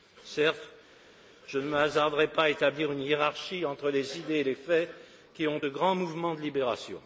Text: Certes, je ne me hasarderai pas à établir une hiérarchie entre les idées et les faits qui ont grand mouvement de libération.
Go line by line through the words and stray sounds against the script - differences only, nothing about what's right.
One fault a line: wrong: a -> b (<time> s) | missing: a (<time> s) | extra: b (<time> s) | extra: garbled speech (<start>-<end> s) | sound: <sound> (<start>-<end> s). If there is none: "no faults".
no faults